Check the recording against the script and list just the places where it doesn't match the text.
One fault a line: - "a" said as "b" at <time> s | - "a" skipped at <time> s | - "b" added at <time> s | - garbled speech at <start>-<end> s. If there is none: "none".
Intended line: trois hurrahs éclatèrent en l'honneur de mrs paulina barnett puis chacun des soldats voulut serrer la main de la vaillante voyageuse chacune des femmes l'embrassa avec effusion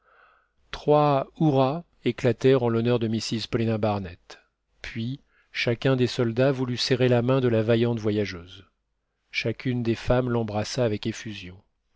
none